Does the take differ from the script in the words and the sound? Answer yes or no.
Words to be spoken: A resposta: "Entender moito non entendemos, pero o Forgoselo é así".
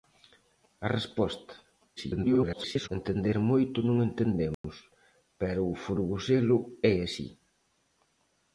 yes